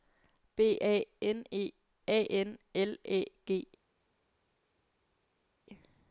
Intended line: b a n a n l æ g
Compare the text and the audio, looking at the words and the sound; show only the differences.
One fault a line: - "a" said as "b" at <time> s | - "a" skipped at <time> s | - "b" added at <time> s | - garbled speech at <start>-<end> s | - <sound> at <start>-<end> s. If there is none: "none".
- "e" added at 1.5 s